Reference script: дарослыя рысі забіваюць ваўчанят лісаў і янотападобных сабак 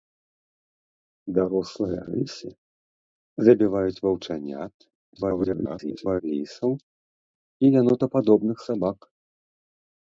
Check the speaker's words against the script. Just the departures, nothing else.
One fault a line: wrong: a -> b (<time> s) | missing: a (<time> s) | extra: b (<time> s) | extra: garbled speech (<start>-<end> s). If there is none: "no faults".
extra: garbled speech (5.2-6.2 s)